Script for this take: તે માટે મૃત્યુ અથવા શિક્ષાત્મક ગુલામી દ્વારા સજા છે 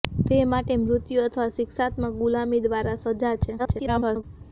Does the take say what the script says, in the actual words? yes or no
no